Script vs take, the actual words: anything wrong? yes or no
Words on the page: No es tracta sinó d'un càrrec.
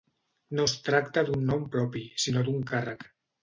yes